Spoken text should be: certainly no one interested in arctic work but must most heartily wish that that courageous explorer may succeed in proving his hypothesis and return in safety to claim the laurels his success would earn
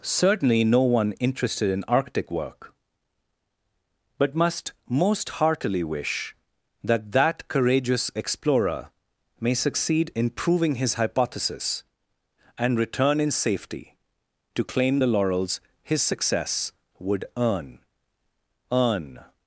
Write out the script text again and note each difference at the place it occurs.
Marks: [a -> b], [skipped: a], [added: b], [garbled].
certainly no one interested in arctic work but must most heartily wish that that courageous explorer may succeed in proving his hypothesis and return in safety to claim the laurels his success would earn [added: earn]